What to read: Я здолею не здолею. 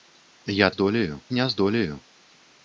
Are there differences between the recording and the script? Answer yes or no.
no